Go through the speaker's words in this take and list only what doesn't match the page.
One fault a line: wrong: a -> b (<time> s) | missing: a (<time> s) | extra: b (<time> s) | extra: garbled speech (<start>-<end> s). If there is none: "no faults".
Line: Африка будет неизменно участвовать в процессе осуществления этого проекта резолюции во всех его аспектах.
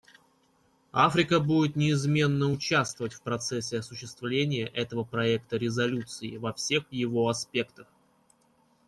no faults